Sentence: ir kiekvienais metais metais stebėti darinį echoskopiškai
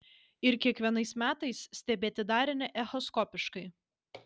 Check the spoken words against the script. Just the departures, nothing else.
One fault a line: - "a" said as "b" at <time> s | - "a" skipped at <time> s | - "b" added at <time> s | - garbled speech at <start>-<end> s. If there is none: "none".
- "metais" skipped at 1.6 s